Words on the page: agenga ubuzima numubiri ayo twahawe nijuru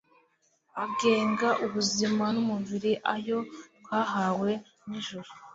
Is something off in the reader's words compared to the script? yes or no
no